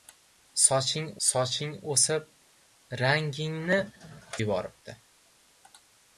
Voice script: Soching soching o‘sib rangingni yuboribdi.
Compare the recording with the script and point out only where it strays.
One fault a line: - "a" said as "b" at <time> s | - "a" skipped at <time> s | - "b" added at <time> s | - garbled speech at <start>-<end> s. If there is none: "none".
none